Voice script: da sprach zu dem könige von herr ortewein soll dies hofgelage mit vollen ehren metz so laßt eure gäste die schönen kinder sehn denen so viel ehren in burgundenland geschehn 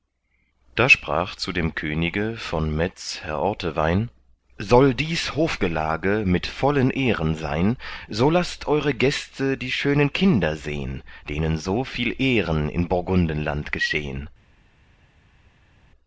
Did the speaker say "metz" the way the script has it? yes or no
no